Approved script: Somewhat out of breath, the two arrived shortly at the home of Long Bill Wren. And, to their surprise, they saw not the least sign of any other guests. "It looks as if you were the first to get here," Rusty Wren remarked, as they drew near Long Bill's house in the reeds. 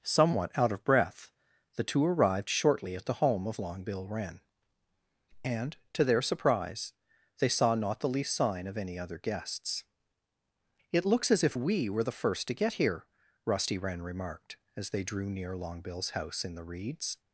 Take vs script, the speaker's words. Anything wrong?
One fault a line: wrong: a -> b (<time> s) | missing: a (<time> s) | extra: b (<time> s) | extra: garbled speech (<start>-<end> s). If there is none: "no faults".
wrong: you -> we (11.5 s)